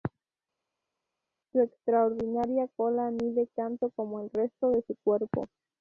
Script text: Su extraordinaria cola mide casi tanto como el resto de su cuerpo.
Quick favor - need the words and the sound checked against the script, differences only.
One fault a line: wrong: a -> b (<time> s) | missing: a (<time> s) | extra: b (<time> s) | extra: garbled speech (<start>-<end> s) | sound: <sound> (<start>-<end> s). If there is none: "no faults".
missing: casi (3.5 s)